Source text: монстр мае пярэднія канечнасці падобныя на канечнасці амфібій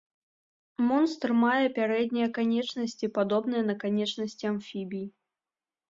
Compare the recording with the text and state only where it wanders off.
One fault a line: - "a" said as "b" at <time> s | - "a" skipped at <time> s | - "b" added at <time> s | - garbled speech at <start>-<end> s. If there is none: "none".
none